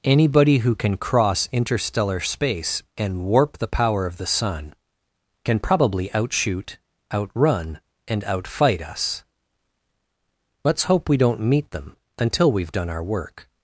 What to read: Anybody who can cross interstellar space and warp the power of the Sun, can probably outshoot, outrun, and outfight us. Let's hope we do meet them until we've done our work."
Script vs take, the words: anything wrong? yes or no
yes